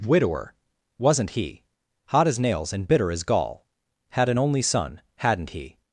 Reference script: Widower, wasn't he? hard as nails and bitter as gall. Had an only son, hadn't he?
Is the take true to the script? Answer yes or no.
no